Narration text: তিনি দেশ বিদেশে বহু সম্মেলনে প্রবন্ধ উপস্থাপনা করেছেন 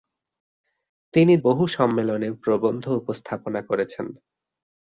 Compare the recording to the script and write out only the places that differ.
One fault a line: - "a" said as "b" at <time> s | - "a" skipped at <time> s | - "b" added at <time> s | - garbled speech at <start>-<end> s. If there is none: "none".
- "দেশ বিদেশে" skipped at 1.3 s